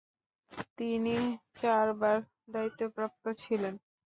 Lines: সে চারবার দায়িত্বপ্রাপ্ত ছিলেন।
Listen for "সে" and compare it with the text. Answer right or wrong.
wrong